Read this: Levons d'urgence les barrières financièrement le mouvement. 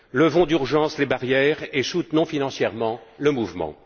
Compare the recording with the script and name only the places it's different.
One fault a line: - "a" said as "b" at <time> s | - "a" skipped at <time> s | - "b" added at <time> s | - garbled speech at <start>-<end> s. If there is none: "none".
- "et soutenons" added at 1.7 s